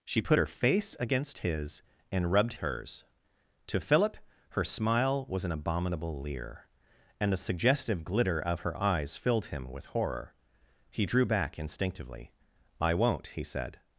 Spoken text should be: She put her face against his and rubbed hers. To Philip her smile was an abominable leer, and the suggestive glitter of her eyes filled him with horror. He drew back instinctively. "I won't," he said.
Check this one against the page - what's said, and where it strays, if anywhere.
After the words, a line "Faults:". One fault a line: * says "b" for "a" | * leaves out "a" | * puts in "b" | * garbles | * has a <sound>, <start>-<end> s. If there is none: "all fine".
She put her face against his and rubbed hers. To Philip her smile was an abominable leer, and the suggestive glitter of her eyes filled him with horror. He drew back instinctively. "I won't," he said.
Faults:
all fine